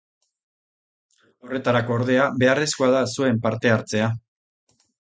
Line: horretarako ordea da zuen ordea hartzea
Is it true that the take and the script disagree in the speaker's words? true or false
true